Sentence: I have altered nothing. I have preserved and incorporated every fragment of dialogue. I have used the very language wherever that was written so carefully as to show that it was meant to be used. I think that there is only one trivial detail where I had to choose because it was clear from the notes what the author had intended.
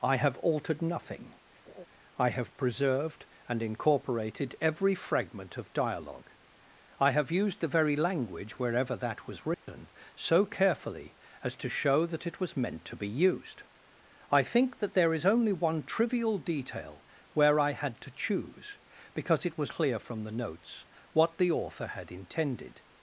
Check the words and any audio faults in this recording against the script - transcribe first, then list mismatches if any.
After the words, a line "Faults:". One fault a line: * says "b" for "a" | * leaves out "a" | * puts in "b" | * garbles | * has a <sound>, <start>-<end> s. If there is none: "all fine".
I have altered nothing. I have preserved and incorporated every fragment of dialogue. I have used the very language wherever that was written so carefully as to show that it was meant to be used. I think that there is only one trivial detail where I had to choose because it was clear from the notes what the author had intended.
Faults:
* has a laugh, 1.7-1.9 s
* has a dropout, 9.5-9.7 s